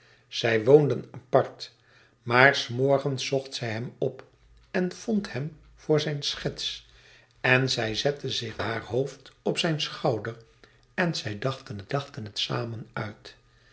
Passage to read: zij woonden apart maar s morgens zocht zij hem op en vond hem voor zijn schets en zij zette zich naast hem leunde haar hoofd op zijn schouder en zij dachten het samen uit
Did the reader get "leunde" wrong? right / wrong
wrong